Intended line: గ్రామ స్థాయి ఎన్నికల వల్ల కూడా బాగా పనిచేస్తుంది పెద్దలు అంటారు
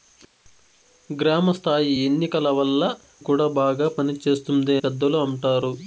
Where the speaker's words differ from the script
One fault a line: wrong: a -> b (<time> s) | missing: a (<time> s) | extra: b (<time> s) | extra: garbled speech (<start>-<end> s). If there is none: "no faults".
no faults